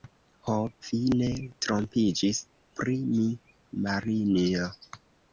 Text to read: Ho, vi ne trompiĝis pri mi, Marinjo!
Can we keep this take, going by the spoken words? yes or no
yes